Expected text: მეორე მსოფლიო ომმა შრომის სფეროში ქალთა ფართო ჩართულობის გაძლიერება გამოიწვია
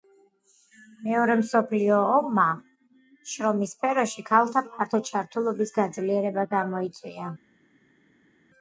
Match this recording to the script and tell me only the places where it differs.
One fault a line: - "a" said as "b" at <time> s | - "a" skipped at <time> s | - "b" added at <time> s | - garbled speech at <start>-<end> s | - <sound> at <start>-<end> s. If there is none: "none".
none